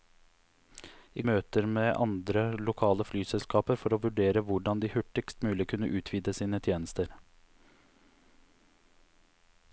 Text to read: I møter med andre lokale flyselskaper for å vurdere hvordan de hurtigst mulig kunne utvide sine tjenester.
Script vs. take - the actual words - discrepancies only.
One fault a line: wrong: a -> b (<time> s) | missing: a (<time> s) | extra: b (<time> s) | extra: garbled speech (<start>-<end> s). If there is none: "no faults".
no faults